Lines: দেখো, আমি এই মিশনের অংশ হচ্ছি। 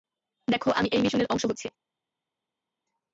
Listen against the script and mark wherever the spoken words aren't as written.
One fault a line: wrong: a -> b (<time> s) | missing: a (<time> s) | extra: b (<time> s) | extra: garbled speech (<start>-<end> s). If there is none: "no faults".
no faults